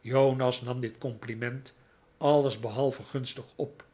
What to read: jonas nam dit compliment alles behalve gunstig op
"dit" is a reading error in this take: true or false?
false